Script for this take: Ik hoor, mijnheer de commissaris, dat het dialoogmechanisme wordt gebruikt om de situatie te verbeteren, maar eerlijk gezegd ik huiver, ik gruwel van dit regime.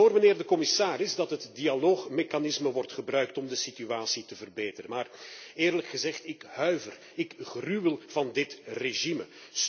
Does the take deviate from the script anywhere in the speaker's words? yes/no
no